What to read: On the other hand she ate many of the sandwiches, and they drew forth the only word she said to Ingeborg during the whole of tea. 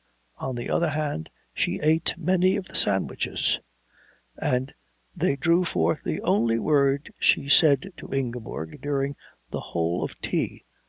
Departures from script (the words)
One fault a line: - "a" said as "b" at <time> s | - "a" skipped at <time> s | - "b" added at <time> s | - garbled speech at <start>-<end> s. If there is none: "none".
none